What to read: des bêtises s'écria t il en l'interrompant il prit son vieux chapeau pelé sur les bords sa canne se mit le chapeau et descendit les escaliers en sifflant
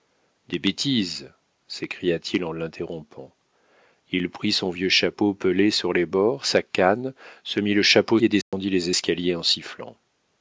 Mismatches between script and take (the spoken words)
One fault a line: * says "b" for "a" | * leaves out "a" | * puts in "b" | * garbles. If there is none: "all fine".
all fine